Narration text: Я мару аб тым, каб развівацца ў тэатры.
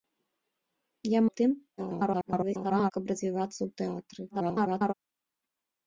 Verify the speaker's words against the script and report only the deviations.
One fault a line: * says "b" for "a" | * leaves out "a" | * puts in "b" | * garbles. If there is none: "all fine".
* leaves out "мару"
* garbles
* garbles